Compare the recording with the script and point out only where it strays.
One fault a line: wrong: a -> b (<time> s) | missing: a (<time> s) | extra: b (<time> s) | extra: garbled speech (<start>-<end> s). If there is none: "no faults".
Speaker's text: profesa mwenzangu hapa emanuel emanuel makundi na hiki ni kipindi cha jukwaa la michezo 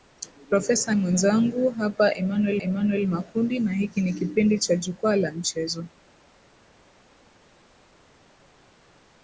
no faults